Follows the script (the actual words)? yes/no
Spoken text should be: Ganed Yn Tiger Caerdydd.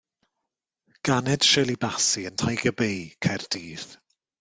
no